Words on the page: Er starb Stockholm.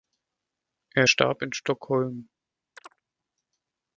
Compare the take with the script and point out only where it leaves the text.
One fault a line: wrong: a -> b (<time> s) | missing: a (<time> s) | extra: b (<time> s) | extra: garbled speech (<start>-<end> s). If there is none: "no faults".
extra: in (1.4 s)